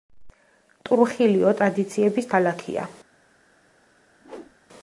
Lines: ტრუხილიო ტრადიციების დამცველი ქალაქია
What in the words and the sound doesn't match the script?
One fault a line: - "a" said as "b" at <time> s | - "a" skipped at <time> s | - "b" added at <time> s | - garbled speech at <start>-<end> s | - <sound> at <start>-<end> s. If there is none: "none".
- "დამცველი" skipped at 2.3 s
- whoosh at 4.2-4.6 s